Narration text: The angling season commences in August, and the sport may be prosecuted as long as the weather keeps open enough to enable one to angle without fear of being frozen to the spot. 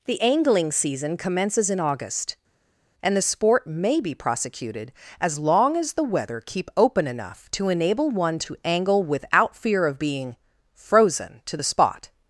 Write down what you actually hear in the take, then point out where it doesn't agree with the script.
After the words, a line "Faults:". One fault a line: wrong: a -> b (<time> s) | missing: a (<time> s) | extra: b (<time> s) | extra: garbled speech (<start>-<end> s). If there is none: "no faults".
The angling season commences in August, and the sport may be prosecuted as long as the weather keep open enough to enable one to angle without fear of being frozen to the spot.
Faults:
wrong: keeps -> keep (6.4 s)